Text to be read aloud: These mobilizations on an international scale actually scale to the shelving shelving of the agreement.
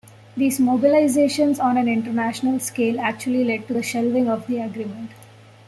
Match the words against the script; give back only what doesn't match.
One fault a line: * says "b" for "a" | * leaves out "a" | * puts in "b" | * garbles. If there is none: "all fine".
* says "led" for "scale"
* leaves out "shelving"